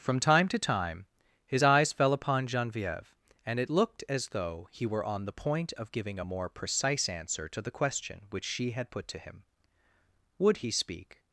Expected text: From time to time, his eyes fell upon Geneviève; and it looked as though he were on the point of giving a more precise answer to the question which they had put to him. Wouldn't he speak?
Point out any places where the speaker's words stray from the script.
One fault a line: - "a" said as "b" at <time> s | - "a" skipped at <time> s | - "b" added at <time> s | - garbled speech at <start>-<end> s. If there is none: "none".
- "they" said as "she" at 8.4 s
- "Wouldn't" said as "Would" at 10.4 s